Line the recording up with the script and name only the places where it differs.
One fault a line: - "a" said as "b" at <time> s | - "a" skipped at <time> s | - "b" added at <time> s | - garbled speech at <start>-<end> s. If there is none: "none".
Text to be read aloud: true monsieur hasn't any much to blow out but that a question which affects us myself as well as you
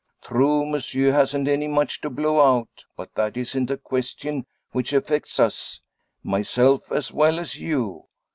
- "isn't" added at 3.4 s